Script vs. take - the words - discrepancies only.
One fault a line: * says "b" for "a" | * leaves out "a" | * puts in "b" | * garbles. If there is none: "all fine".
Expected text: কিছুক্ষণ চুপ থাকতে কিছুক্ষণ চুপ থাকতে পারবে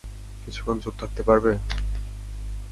* leaves out "কিছুক্ষণ চুপ থাকতে"